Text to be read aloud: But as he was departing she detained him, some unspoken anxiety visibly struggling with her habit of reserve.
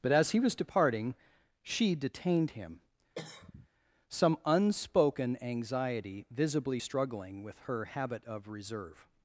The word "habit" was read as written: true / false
true